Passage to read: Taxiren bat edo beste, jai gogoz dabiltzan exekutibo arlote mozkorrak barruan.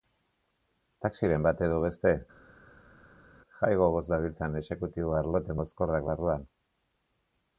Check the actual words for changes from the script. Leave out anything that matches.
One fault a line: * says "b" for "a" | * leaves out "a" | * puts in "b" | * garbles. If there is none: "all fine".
all fine